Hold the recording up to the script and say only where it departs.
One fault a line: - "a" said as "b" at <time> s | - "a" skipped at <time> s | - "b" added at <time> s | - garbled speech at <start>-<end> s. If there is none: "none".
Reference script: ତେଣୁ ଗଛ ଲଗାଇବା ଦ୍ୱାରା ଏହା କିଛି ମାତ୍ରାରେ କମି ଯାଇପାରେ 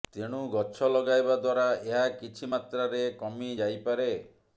none